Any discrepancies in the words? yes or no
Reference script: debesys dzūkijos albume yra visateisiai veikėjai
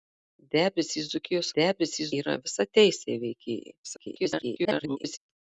yes